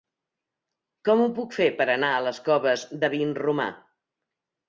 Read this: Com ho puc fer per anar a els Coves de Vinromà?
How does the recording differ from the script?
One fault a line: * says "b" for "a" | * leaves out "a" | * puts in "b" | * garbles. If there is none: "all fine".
* says "les" for "els"